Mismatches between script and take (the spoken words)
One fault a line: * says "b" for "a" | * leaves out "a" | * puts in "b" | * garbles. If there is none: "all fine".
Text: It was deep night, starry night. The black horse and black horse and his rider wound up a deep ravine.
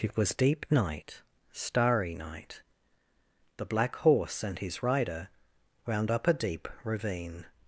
* leaves out "black horse and"